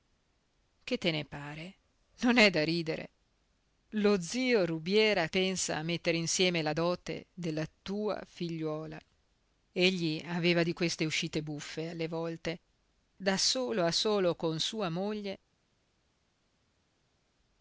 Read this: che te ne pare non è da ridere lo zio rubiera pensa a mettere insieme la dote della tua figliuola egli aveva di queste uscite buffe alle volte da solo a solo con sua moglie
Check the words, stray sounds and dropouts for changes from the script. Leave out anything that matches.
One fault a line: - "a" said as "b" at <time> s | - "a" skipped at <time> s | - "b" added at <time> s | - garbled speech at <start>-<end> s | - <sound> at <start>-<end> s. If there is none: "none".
none